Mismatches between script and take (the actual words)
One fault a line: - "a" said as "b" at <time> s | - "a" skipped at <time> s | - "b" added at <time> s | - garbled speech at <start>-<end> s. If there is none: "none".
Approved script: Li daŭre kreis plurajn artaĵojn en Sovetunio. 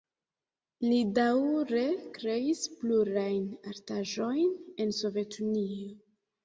none